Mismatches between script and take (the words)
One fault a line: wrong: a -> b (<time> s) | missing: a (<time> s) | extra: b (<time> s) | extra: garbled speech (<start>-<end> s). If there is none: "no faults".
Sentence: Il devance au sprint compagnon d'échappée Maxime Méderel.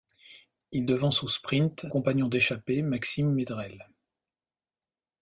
no faults